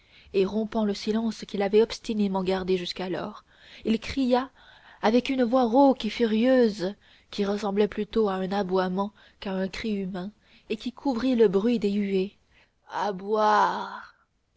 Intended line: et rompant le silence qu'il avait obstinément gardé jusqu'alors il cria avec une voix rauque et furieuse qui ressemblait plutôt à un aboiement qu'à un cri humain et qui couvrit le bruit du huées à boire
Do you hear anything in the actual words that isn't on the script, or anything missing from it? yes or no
yes